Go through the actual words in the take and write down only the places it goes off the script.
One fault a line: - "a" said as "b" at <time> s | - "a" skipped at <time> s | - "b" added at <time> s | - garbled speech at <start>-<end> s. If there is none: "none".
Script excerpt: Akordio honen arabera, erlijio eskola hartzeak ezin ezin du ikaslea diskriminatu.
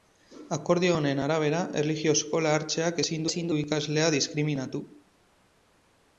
none